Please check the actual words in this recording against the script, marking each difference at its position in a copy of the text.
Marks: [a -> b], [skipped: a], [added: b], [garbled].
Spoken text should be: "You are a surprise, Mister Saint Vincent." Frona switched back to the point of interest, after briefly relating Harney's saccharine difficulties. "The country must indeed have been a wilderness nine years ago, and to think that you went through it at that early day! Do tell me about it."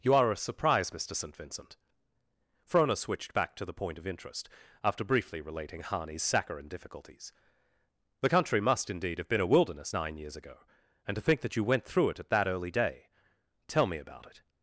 "You are a surprise, Mister Saint Vincent." Frona switched back to the point of interest, after briefly relating Harney's saccharine difficulties. "The country must indeed have been a wilderness nine years ago, and to think that you went through it at that early day! [skipped: Do] tell me about it."